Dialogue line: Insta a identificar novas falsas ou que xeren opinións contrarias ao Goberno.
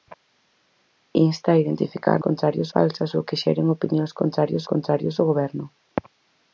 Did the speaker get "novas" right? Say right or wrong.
wrong